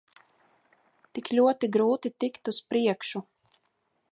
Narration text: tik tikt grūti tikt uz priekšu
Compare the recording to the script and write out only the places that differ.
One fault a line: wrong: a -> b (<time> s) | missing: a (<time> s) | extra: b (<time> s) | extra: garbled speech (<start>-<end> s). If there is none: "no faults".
wrong: tikt -> ļoti (1.4 s)